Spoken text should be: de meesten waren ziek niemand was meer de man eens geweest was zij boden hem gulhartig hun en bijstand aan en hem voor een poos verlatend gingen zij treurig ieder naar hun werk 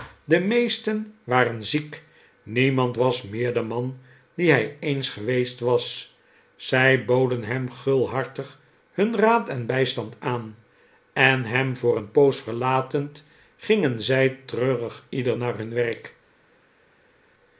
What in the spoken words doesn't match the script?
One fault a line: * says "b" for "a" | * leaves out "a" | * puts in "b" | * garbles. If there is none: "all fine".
* puts in "die hij"
* puts in "raad"